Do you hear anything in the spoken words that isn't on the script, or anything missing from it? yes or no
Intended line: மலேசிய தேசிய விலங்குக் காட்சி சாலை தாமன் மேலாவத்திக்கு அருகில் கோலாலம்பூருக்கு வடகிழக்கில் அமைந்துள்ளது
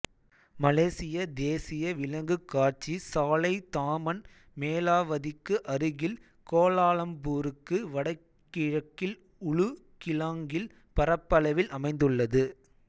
yes